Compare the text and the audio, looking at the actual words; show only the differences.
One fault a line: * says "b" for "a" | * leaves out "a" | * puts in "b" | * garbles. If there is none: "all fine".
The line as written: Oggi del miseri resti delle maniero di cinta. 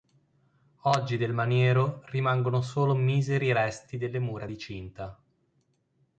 * puts in "maniero rimangono solo"
* says "mura" for "maniero"